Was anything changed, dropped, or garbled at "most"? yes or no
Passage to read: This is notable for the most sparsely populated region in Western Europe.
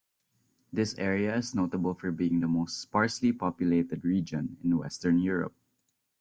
no